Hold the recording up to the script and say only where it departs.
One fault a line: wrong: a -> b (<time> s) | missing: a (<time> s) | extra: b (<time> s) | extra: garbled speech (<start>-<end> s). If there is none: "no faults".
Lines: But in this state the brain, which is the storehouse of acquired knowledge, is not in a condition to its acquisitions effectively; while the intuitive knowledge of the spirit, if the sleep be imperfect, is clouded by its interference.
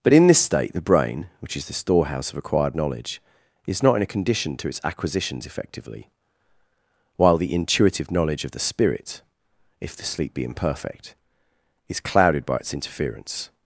no faults